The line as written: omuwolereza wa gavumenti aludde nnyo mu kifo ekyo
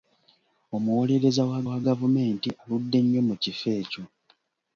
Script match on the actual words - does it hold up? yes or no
no